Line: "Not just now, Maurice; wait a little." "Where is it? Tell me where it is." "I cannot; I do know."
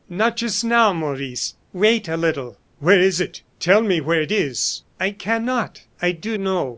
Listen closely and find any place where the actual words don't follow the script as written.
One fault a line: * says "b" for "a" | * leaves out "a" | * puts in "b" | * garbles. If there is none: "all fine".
all fine